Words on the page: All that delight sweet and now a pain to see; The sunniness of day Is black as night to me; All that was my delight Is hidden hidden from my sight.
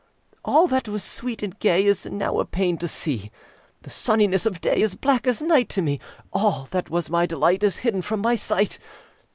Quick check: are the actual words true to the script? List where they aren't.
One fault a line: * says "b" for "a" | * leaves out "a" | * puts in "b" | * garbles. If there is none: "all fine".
* says "was" for "delight"
* puts in "gay Is"
* leaves out "hidden"